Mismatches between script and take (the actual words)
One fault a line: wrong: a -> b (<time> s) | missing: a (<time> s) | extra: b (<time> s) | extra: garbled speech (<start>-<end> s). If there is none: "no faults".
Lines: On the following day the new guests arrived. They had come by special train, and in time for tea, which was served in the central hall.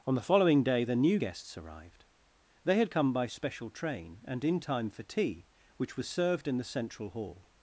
no faults